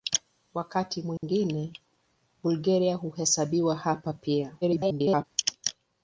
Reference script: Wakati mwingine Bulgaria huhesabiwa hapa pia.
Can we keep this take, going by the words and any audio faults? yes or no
no